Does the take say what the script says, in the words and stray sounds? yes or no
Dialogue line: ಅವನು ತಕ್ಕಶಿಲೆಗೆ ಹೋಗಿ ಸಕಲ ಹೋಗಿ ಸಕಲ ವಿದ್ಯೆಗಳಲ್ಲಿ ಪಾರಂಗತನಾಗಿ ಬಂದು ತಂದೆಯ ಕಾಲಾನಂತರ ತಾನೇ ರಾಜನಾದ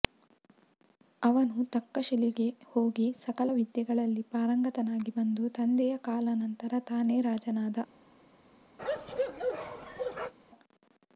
no